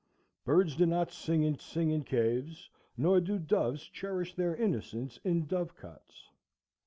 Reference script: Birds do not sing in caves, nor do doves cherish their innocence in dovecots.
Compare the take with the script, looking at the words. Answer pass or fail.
fail